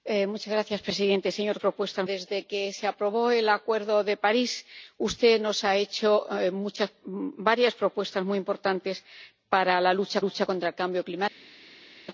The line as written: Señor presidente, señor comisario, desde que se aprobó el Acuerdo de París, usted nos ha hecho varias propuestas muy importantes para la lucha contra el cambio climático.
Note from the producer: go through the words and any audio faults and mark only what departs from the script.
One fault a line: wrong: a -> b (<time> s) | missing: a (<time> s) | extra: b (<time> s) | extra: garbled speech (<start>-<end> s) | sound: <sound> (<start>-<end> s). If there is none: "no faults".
wrong: comisario -> propuestas (1.6 s)
extra: lucha (10.2 s)